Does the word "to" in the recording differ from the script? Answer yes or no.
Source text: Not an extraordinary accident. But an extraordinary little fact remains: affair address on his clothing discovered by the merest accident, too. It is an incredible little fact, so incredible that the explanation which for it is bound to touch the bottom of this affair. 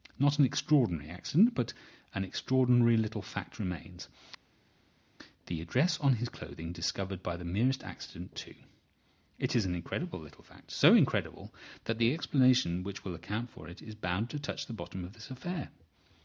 no